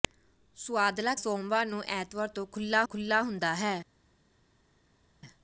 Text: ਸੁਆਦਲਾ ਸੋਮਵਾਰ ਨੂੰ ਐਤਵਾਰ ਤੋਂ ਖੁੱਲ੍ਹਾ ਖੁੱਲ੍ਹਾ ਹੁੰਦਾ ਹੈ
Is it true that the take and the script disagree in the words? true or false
false